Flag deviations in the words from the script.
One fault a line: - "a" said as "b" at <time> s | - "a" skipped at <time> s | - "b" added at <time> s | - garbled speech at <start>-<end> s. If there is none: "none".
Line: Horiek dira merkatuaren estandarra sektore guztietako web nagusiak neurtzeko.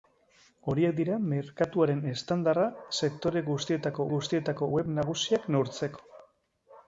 - "guztietako" added at 4.1 s